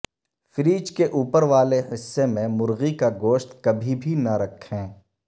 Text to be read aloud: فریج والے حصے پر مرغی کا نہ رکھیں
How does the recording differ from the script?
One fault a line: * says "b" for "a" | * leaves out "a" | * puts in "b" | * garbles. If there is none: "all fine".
* puts in "کے اوپر"
* says "میں" for "پر"
* puts in "گوشت کبھی بھی"